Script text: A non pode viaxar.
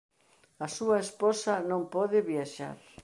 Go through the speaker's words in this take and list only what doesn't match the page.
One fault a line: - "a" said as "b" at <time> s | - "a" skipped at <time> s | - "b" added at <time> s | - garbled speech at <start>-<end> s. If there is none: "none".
- "súa esposa" added at 0.8 s